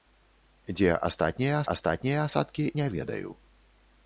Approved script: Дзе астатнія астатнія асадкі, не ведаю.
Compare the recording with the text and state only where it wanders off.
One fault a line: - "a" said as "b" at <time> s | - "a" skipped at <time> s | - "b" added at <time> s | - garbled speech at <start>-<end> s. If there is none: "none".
none